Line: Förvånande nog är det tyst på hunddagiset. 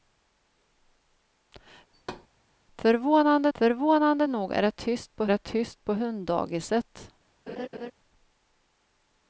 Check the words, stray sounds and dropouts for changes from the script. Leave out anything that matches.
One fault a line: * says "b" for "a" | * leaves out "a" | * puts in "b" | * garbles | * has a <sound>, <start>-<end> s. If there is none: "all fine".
* has a thud, 1.9-2.3 s
* puts in "förvånande"
* puts in "det tyst på"
* has a laugh, 7.5-7.9 s